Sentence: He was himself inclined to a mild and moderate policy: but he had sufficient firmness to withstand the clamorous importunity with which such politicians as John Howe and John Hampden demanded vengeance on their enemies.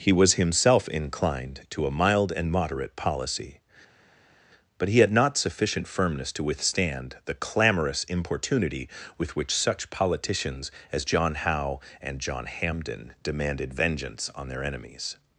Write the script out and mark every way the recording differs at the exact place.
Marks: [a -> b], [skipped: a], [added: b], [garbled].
He was himself inclined to a mild and moderate policy: but he had [added: not] sufficient firmness to withstand the clamorous importunity with which such politicians as John Howe and John Hampden demanded vengeance on their enemies.